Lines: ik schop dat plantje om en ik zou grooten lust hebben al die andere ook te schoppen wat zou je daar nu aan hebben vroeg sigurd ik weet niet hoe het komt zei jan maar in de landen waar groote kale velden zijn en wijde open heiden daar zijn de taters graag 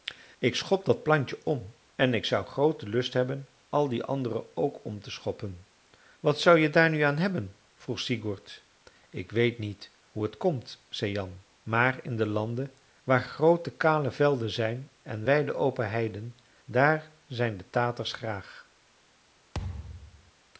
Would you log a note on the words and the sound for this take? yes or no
yes